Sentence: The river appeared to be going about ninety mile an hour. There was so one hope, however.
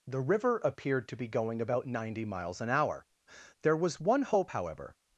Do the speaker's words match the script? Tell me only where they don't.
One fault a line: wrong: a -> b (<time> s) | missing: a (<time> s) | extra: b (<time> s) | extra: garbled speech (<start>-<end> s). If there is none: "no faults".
wrong: mile -> miles (2.2 s)
missing: so (4.0 s)